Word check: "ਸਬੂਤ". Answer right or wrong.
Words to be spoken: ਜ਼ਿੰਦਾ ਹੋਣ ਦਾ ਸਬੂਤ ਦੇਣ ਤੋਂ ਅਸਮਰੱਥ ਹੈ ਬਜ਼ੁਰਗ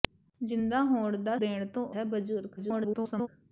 wrong